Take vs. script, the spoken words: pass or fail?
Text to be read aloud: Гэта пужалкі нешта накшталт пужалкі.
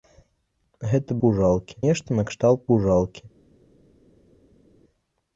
pass